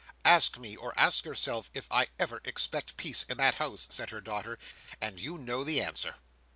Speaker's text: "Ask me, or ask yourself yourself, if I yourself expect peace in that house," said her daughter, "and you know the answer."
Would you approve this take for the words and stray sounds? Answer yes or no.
no